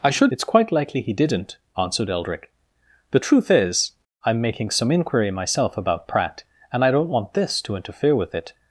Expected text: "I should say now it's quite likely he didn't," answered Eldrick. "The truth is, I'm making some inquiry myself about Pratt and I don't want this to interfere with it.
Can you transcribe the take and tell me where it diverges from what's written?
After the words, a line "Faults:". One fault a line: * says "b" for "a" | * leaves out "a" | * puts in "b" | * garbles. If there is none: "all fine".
"I should it's quite likely he didn't," answered Eldrick. "The truth is, I'm making some inquiry myself about Pratt and I don't want this to interfere with it.
Faults:
* leaves out "say now"